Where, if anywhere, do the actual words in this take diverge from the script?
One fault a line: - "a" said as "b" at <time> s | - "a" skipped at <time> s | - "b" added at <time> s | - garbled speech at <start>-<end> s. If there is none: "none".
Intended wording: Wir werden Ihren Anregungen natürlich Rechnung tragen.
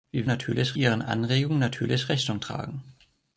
- "werden" said as "natürlich" at 0.2 s